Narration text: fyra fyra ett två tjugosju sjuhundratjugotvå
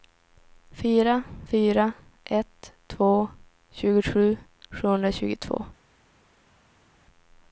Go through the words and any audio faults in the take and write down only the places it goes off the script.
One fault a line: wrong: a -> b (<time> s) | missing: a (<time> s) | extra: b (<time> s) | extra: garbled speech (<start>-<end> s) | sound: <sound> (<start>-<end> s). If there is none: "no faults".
no faults